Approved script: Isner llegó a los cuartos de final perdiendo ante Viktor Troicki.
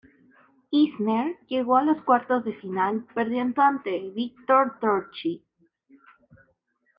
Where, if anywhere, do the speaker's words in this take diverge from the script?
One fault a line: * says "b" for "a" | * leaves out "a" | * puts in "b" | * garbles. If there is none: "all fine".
all fine